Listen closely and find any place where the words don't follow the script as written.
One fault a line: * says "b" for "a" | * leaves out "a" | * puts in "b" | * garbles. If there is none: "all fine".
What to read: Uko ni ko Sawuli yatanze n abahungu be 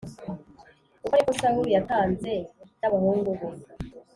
all fine